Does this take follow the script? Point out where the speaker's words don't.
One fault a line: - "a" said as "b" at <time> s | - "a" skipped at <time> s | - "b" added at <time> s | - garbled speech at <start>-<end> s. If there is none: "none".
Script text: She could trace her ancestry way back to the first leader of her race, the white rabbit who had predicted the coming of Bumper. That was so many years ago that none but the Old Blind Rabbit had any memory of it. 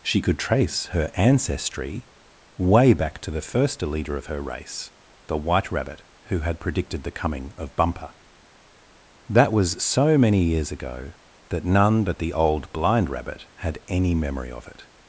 none